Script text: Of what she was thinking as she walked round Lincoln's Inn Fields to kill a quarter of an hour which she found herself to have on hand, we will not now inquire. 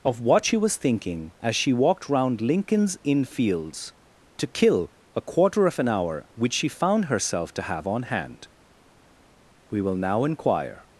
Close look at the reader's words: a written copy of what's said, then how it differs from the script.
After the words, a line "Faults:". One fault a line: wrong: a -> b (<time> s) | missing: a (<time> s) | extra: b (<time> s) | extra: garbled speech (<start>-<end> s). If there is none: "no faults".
Of what she was thinking as she walked round Lincoln's Inn Fields to kill a quarter of an hour which she found herself to have on hand, we will now inquire.
Faults:
missing: not (10.0 s)